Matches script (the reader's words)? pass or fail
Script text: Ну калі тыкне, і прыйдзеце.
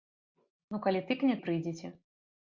pass